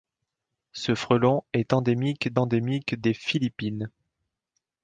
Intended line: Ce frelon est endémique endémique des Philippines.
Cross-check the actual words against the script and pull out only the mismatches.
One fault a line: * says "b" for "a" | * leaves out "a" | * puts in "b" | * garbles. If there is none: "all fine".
all fine